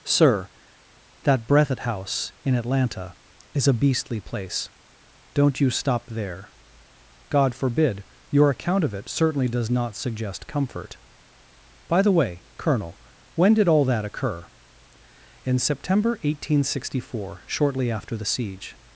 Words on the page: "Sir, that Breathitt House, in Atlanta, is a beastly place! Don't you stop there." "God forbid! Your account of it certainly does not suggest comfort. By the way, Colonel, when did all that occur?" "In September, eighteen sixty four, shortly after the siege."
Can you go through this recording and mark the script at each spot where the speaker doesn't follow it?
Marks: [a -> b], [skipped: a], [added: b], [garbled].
"Sir, that Breathitt House, in Atlanta, is a beastly place! Don't you stop there." "God forbid! Your account of it certainly does not suggest comfort. By the way, Colonel, when did all that occur?" "In September, eighteen sixty four, shortly after the siege."